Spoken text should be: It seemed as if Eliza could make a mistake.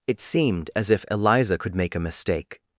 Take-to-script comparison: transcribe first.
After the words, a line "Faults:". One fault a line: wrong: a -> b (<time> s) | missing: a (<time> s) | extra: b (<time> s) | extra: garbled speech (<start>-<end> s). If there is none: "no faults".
It seemed as if Eliza could make a mistake.
Faults:
no faults